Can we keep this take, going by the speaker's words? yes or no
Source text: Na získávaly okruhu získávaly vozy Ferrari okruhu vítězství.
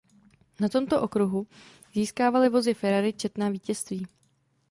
no